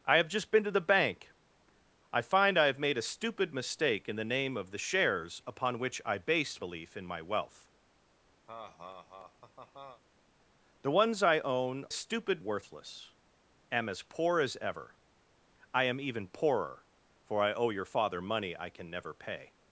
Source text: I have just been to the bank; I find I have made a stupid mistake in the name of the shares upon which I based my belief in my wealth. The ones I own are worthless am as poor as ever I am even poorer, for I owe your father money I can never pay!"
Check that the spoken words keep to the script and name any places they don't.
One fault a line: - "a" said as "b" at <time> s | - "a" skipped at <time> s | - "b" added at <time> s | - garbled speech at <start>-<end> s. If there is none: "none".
- "my" skipped at 6.7 s
- "are" said as "stupid" at 11.9 s